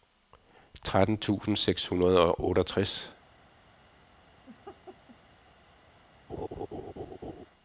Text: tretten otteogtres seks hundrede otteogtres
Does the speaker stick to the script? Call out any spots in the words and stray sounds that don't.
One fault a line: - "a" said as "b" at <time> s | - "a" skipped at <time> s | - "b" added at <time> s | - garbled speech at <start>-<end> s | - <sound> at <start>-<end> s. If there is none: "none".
- "otteogtres" said as "tusind" at 1.2 s
- "og" added at 2.2 s
- laugh at 4.5-5.2 s
- laugh at 6.3-7.5 s